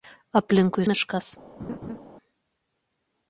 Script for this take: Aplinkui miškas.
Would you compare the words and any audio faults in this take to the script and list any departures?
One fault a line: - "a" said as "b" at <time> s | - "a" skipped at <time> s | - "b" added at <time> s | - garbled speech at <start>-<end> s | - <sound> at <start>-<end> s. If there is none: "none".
- laugh at 1.6-2.0 s